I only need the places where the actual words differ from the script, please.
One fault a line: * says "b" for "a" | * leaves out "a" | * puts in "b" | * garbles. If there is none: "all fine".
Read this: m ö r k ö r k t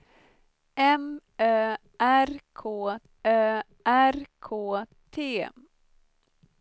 all fine